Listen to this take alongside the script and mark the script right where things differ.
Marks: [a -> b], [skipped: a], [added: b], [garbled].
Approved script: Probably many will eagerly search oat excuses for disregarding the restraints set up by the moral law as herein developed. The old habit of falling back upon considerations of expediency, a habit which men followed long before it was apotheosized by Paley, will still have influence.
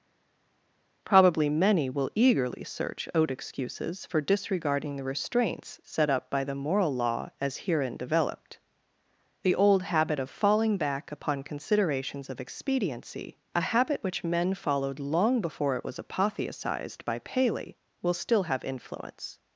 Probably many will eagerly search oat excuses for disregarding the restraints set up by the moral law as herein developed. The old habit of falling back upon considerations of expediency, a habit which men followed long before it was apotheosized by Paley, will still have influence.